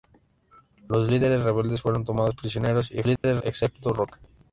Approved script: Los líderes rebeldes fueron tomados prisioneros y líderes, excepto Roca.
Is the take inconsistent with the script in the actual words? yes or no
no